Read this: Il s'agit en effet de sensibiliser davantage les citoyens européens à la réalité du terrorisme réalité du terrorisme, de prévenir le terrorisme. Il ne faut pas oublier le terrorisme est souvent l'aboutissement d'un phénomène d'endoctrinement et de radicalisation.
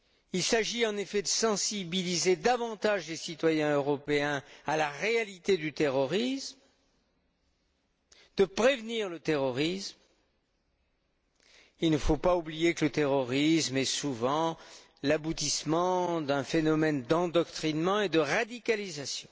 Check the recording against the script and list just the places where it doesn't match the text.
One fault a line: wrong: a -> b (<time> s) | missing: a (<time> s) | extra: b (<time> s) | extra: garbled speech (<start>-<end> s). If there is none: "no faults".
missing: réalité du terrorisme (6.6 s)
extra: que (12.7 s)